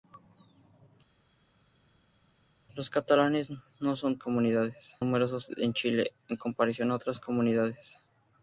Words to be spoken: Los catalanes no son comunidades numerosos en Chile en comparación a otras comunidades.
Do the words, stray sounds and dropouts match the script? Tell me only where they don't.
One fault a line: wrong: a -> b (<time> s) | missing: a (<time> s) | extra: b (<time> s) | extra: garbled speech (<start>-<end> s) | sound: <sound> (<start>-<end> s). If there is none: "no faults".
no faults